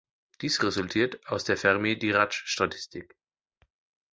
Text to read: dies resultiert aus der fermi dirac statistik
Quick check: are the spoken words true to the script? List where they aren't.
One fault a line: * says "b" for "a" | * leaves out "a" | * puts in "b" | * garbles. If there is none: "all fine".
all fine